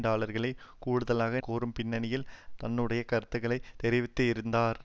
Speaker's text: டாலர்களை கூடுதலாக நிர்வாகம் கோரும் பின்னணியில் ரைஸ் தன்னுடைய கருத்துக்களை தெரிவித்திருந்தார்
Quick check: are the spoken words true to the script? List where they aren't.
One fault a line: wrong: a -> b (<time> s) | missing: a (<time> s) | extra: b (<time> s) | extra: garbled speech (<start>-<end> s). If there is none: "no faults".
missing: நிர்வாகம் (1.4 s)
missing: ரைஸ் (2.3 s)